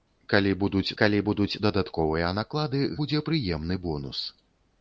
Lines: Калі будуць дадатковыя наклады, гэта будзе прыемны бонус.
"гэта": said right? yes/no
no